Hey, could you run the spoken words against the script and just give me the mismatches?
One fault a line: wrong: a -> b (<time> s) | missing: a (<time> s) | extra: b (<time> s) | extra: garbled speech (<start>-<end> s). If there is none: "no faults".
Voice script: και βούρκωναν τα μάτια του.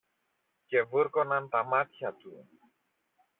no faults